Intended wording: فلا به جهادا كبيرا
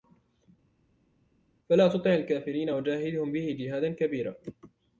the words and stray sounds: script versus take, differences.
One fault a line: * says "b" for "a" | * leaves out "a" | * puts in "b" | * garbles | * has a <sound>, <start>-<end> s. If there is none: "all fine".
* puts in "تطع الكافرين وجاهدهم"